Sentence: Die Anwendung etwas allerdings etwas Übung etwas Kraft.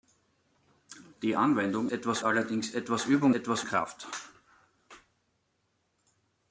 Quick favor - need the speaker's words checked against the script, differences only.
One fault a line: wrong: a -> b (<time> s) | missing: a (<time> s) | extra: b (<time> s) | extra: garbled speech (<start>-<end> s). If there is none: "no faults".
no faults